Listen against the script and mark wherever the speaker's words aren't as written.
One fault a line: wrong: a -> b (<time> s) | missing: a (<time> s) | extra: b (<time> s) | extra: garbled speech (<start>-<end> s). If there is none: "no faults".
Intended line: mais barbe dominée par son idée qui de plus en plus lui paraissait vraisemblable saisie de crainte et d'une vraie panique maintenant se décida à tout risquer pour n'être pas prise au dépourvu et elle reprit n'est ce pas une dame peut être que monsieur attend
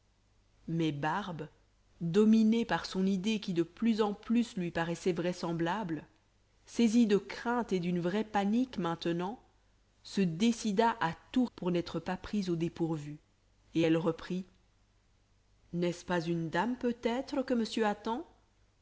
missing: risquer (11.4 s)